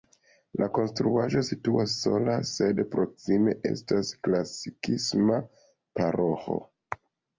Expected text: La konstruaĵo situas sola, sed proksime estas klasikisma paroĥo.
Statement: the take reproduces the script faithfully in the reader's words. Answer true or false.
true